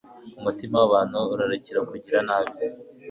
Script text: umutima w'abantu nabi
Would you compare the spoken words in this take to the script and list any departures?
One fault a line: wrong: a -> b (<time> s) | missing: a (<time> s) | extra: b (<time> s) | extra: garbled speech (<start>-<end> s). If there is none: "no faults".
extra: urarikira kugira (1.3 s)